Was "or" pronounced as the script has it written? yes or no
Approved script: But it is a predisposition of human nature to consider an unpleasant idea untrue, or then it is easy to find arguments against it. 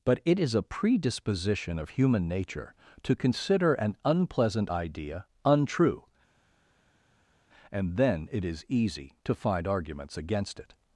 no